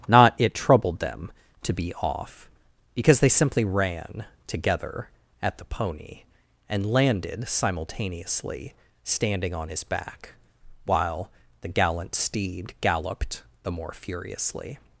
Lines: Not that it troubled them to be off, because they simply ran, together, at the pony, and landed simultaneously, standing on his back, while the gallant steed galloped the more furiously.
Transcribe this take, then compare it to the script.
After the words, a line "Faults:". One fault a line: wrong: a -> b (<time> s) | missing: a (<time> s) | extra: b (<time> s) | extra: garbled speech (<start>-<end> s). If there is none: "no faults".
Not it troubled them to be off, because they simply ran, together, at the pony, and landed simultaneously, standing on his back, while the gallant steed galloped the more furiously.
Faults:
missing: that (0.3 s)